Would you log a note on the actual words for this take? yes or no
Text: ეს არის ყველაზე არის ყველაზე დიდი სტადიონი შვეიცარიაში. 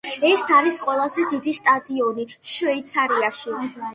yes